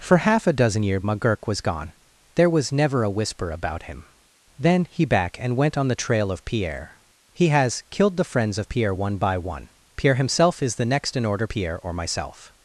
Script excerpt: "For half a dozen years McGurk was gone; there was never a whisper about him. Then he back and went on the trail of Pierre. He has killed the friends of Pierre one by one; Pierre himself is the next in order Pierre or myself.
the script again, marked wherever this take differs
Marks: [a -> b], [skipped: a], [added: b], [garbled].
"For half a dozen years McGurk was gone; there was never a whisper about him. Then he back and went on the trail of Pierre. He has killed the friends of Pierre one by one; Pierre himself is the next in order Pierre or myself.